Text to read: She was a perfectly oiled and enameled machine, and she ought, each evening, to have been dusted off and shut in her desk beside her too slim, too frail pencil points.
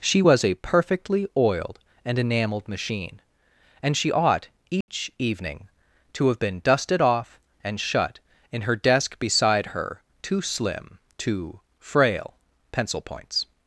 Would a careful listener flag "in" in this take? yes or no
no